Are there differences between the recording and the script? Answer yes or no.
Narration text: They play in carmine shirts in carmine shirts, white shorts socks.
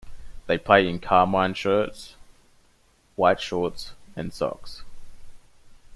yes